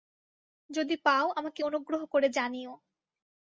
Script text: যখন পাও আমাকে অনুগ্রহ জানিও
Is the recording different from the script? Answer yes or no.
yes